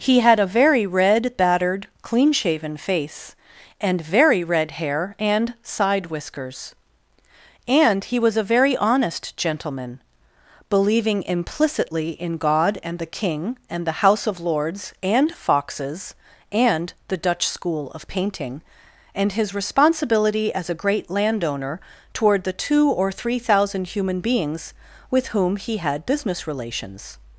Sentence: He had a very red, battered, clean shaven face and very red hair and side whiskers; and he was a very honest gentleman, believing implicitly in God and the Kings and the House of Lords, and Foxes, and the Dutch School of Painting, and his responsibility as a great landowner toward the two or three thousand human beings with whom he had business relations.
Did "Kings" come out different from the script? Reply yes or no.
yes